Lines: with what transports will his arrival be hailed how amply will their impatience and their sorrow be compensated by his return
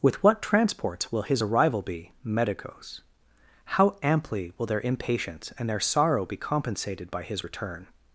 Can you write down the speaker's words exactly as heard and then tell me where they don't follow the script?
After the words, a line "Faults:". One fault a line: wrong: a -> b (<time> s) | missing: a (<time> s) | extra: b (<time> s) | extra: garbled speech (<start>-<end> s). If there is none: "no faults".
with what transports will his arrival be medicos how amply will their impatience and their sorrow be compensated by his return
Faults:
wrong: hailed -> medicos (2.2 s)